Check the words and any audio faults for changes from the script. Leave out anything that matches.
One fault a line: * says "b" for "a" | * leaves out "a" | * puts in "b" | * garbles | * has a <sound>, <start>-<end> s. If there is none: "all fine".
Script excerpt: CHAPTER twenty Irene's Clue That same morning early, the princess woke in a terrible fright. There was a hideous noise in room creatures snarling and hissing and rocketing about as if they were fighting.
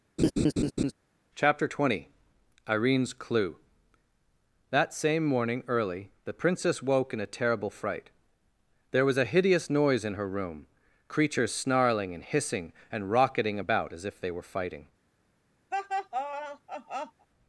* has a laugh, 0.2-0.9 s
* puts in "her"
* has a laugh, 15.7-17.3 s